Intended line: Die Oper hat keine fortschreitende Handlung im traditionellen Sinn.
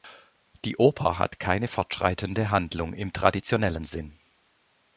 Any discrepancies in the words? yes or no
no